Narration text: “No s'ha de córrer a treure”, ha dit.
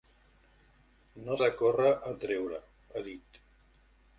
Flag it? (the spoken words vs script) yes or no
yes